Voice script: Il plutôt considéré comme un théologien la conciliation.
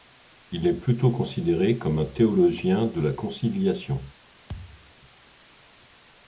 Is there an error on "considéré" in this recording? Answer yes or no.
no